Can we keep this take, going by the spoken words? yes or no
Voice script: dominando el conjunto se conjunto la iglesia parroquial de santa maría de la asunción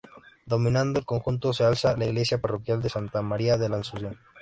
no